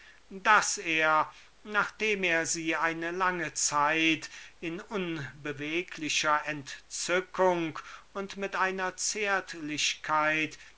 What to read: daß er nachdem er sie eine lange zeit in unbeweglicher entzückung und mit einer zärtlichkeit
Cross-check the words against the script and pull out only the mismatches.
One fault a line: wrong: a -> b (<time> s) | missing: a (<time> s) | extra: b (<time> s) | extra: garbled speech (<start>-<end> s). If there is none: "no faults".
no faults